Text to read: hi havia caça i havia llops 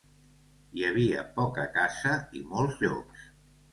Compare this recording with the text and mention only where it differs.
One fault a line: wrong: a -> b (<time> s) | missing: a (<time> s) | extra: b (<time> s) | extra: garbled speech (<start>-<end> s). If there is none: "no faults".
extra: poca (1.4 s)
wrong: havia -> molts (2.5 s)